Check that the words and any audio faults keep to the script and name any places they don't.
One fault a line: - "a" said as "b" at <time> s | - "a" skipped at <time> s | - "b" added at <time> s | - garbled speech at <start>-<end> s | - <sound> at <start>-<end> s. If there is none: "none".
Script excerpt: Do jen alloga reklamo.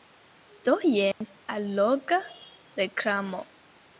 - dropout at 1.1-1.2 s